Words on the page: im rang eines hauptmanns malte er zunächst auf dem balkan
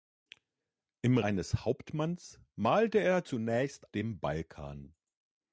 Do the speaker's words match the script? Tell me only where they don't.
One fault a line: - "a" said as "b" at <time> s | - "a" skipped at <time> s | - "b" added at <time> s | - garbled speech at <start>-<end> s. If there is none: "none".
- "rang" skipped at 1.2 s
- "auf" skipped at 3.9 s